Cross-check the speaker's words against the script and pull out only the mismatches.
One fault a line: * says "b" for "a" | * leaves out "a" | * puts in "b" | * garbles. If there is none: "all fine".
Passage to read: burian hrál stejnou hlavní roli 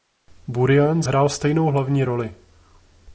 all fine